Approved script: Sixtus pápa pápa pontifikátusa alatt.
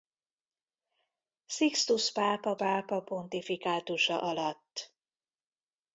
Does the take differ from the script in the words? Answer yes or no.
no